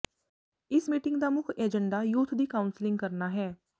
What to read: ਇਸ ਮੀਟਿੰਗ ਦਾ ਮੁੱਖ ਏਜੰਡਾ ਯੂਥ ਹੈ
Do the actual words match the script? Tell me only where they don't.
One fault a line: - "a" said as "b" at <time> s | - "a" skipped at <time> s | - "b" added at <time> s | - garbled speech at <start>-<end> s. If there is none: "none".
- "ਦੀ ਕਾਊਂਸਲਿੰਗ ਕਰਨਾ" added at 2.3 s